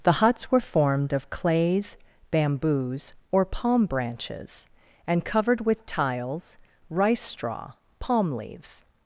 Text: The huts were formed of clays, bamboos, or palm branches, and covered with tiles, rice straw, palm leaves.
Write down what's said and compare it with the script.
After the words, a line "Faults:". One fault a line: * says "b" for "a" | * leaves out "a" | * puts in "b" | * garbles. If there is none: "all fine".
The huts were formed of clays, bamboos, or palm branches, and covered with tiles, rice straw, palm leaves.
Faults:
all fine